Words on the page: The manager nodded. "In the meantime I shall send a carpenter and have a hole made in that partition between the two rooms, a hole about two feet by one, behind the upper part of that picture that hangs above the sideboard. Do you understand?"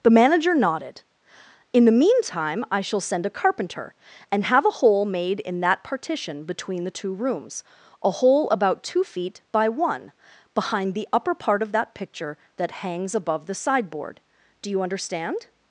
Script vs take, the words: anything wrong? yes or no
no